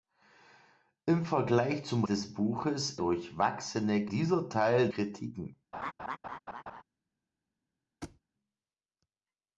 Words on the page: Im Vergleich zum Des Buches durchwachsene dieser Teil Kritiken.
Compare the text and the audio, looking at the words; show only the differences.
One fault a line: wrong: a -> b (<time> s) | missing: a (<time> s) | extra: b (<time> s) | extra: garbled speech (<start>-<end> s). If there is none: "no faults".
no faults